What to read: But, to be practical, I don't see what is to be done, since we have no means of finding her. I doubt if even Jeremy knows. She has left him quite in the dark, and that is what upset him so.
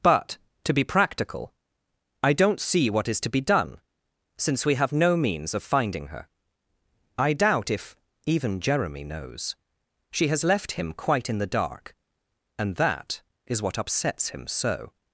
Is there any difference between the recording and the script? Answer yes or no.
yes